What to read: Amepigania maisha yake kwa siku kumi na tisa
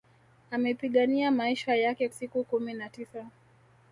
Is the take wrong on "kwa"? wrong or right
wrong